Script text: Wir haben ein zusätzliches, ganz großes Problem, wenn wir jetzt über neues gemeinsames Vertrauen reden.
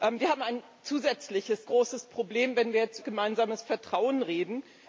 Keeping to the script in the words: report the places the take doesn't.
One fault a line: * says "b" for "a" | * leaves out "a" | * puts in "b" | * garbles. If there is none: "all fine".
* leaves out "ganz"
* leaves out "über neues"